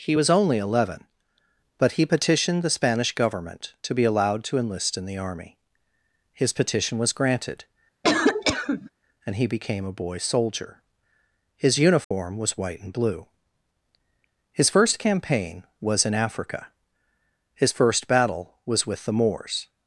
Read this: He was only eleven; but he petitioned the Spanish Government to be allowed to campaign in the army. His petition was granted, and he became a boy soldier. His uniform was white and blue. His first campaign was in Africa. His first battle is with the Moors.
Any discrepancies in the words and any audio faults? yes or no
yes